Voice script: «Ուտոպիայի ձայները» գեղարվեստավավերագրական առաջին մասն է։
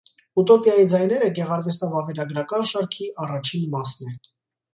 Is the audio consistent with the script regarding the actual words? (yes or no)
no